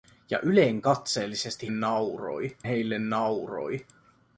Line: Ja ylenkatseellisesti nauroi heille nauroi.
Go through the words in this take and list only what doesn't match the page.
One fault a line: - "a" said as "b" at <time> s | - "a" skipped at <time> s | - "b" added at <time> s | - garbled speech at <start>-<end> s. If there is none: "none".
none